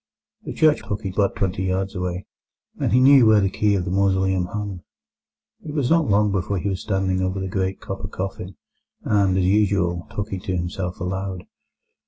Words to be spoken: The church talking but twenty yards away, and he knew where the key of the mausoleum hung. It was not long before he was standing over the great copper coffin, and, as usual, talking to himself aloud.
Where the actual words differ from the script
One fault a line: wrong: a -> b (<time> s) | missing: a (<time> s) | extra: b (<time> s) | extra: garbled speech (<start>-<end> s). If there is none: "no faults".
no faults